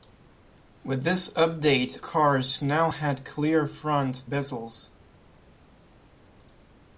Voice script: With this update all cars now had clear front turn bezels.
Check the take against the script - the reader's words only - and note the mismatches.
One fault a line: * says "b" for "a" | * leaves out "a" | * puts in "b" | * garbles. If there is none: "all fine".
* leaves out "all"
* leaves out "turn"